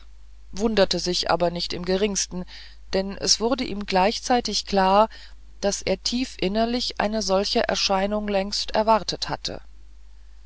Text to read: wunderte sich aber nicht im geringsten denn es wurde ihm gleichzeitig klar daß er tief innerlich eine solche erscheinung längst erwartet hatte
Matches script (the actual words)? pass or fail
pass